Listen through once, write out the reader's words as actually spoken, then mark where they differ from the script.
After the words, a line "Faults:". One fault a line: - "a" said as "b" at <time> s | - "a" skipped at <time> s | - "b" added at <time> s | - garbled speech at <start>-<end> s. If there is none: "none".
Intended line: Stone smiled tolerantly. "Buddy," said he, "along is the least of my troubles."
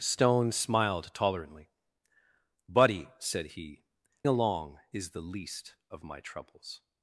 Stone smiled tolerantly. "Buddy," said he, "along is the least of my troubles."
Faults:
none